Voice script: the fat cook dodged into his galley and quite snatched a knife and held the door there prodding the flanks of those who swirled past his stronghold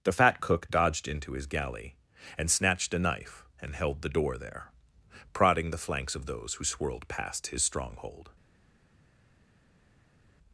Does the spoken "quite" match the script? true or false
false